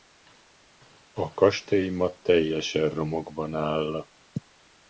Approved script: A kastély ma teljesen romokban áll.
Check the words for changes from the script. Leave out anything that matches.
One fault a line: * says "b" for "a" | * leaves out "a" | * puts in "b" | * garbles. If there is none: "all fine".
all fine